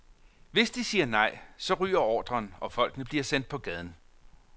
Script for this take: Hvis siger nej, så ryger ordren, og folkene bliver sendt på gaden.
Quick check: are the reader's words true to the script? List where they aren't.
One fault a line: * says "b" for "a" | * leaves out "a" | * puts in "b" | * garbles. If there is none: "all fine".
* puts in "de"